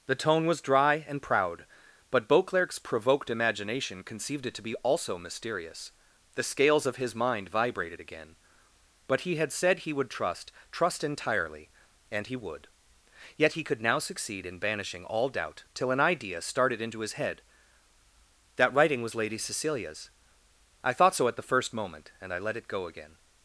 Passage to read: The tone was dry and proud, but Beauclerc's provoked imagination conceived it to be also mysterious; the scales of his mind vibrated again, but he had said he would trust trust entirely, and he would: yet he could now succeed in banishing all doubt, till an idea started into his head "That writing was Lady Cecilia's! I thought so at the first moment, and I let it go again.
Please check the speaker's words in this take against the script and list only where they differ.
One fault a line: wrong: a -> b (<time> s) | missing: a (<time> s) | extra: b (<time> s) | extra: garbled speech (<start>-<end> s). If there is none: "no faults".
no faults